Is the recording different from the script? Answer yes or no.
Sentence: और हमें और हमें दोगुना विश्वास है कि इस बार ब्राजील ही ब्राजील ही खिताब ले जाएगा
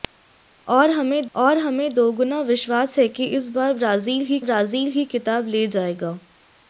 no